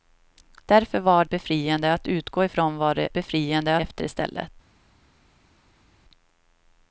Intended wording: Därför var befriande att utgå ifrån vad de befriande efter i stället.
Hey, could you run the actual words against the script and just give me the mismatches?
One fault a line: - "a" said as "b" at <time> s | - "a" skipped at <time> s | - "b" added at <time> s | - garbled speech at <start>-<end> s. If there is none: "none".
none